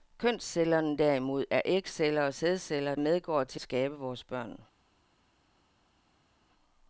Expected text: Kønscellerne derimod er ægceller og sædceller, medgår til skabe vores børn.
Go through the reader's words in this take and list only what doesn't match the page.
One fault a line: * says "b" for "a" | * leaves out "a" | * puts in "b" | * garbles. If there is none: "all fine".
all fine